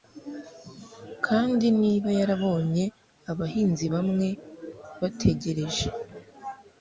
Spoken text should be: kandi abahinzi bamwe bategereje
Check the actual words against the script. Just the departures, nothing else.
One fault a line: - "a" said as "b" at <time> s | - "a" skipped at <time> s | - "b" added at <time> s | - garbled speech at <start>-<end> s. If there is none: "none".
- "niba yarabonye" added at 1.8 s